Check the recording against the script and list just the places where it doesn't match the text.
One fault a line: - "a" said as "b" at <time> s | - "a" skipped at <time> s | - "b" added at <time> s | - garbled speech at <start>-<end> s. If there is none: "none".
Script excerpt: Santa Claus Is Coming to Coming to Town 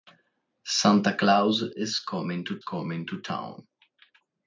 none